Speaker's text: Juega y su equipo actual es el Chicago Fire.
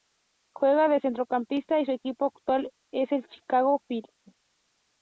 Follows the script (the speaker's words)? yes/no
no